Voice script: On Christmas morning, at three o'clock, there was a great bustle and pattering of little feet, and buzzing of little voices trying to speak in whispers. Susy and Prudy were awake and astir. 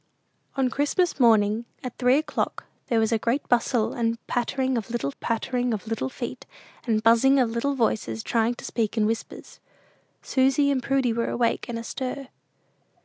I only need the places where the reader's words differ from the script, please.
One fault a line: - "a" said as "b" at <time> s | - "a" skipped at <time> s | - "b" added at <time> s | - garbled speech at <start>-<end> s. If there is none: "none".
- "pattering of little" added at 5.2 s